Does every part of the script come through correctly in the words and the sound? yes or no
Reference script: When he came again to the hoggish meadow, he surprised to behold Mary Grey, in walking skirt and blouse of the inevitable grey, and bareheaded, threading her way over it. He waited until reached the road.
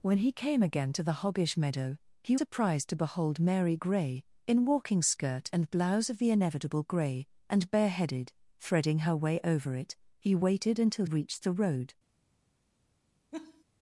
no